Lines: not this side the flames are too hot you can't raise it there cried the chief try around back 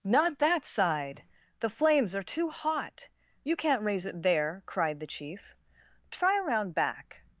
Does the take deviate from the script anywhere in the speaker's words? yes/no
yes